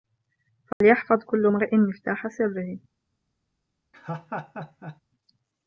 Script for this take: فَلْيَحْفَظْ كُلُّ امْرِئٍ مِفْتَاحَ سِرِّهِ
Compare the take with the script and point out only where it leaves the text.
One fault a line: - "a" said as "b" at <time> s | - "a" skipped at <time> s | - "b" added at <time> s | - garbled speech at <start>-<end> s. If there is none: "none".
none